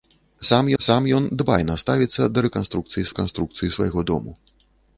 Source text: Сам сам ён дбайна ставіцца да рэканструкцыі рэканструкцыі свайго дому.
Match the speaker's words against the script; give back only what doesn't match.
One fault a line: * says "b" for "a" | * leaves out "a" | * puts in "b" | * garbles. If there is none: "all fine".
all fine